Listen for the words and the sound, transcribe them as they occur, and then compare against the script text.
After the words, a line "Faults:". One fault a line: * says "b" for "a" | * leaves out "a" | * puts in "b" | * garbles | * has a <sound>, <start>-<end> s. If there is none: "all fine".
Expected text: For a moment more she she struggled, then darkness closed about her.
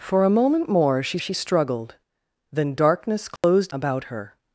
For a moment more she she struggled, then darkness closed about her.
Faults:
* has a dropout, 3.4-3.4 s